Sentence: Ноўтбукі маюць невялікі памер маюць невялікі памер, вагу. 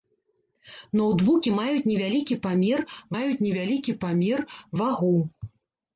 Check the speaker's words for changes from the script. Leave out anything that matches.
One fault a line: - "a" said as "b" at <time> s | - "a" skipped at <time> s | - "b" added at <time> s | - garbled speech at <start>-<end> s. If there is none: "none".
none